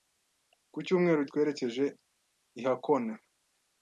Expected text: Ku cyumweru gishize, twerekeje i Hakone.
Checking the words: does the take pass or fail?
fail